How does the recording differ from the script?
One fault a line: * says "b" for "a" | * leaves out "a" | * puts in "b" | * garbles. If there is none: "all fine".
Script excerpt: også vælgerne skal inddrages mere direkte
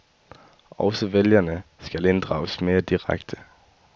all fine